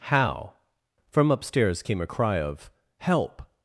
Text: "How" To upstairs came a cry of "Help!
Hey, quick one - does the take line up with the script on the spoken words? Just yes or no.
no